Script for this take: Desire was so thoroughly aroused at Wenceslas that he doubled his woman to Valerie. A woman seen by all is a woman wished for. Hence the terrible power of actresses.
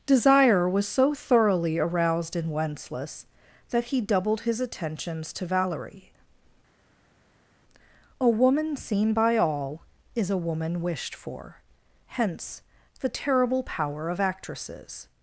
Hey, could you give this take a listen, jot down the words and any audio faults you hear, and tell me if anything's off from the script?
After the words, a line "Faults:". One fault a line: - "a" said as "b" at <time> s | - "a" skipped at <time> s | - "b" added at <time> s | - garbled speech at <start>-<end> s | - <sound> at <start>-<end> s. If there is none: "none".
Desire was so thoroughly aroused in Wenceslas that he doubled his attentions to Valerie. A woman seen by all is a woman wished for. Hence the terrible power of actresses.
Faults:
- "at" said as "in" at 2.4 s
- "woman" said as "attentions" at 4.6 s